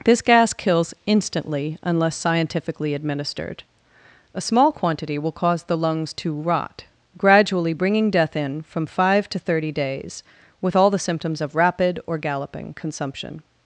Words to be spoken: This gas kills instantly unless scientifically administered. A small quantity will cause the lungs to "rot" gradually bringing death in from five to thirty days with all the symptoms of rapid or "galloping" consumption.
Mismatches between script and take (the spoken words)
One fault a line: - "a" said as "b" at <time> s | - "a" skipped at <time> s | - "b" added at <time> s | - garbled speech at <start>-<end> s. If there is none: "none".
none